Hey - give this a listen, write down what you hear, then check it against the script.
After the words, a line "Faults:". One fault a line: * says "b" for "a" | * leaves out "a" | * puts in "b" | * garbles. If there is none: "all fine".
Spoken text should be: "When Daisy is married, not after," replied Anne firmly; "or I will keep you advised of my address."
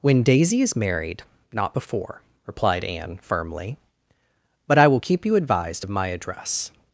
"When Daisy is married, not before," replied Anne firmly; "but I will keep you advised of my address."
Faults:
* says "before" for "after"
* says "but" for "or"